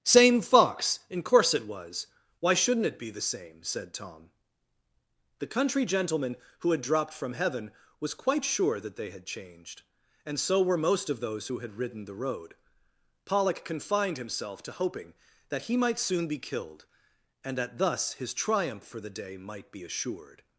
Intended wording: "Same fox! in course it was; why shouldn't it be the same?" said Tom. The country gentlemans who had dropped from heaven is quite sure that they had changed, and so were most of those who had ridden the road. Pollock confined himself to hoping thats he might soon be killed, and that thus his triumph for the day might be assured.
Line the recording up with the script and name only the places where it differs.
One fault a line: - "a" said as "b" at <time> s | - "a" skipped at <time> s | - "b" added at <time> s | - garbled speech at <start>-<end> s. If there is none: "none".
- "gentlemans" said as "gentleman" at 5.8 s
- "is" said as "was" at 8.0 s
- "thats" said as "that" at 15.5 s